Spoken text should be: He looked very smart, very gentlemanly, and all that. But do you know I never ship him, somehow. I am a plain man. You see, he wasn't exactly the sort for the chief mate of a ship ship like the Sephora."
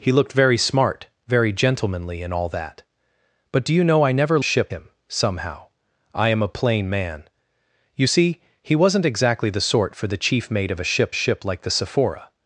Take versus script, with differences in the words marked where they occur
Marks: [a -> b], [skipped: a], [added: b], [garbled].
He looked very smart, very gentlemanly, and all that. But do you know I never ship him, somehow. I am a plain man. You see, he wasn't exactly the sort for the chief mate of a ship ship like the Sephora."